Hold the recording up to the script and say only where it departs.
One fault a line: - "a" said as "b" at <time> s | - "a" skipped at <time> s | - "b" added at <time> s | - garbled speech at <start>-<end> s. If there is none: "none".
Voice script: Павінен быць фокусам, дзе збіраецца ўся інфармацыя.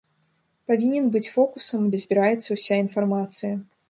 none